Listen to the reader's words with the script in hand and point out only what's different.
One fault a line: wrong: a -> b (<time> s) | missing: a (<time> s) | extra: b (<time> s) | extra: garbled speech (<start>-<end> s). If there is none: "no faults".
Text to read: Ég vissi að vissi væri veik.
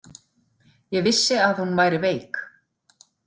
wrong: vissi -> hún (1.6 s)